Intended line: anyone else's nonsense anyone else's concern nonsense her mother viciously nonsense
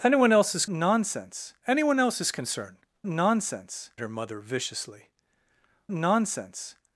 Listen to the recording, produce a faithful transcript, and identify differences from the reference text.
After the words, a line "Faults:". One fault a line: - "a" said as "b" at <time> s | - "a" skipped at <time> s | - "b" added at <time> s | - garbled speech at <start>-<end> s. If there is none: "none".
anyone else's nonsense anyone else's concern nonsense her mother viciously nonsense
Faults:
none